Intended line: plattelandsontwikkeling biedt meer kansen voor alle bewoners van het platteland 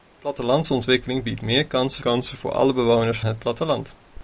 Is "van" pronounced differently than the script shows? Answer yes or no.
yes